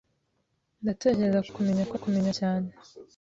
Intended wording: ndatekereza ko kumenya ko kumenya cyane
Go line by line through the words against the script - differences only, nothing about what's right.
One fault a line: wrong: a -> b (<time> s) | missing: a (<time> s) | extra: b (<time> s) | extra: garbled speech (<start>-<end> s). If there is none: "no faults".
no faults